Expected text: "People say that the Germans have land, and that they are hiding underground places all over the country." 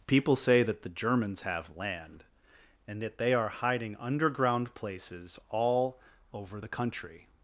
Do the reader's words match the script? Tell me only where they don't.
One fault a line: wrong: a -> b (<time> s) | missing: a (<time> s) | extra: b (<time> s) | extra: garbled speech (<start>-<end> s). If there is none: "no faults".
no faults